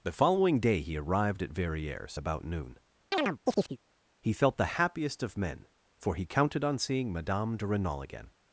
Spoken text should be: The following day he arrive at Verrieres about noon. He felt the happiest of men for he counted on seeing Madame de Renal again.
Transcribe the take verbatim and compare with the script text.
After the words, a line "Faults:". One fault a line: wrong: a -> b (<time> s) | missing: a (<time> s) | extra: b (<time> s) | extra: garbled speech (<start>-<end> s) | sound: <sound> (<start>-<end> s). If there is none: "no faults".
The following day he arrived at Verrieres about noon. He felt the happiest of men for he counted on seeing Madame de Renal again.
Faults:
wrong: arrive -> arrived (1.0 s)
sound: chirp (3.1-3.8 s)